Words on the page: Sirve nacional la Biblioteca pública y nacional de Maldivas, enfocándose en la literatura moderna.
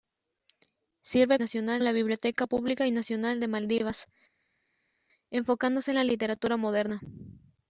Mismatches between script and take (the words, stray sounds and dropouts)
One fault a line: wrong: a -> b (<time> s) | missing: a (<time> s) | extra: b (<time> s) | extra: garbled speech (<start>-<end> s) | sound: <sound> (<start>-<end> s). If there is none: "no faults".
no faults